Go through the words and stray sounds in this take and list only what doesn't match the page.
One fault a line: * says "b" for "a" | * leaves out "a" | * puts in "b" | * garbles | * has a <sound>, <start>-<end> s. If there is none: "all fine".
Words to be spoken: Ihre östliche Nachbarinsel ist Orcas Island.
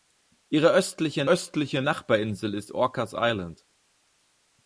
* puts in "östliche"